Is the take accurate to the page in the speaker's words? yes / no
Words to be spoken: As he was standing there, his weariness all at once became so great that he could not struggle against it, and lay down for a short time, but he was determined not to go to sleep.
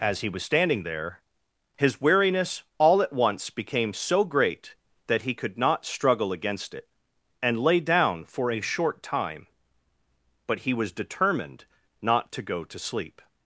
yes